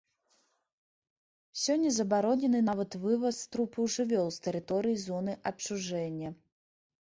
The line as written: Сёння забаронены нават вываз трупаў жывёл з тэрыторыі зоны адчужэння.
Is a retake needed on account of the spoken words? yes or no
no